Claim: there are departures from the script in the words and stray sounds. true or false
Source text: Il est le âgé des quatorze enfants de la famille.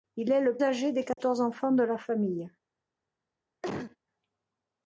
true